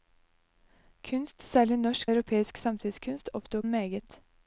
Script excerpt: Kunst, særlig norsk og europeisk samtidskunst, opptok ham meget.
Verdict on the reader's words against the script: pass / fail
fail